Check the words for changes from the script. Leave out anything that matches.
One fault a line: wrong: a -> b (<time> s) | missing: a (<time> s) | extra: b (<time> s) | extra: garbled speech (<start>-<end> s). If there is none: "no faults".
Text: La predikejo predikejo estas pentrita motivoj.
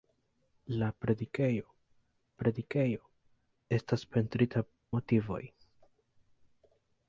no faults